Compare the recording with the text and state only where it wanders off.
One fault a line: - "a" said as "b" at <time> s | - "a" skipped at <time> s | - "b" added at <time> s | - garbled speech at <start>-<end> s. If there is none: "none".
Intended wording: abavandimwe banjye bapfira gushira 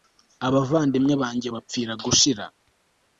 none